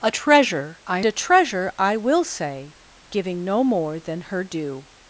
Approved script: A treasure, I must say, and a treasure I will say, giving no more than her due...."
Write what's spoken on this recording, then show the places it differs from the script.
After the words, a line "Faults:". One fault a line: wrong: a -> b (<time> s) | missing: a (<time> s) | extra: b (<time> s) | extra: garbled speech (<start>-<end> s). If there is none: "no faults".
A treasure, I a treasure I will say, giving no more than her due...."
Faults:
missing: must say and (1.0 s)